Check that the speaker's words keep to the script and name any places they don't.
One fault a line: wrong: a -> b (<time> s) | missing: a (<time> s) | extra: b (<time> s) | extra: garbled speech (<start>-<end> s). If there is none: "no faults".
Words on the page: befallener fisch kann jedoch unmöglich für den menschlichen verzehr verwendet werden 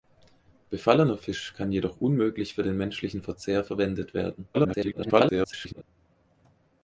extra: garbled speech (4.5-5.8 s)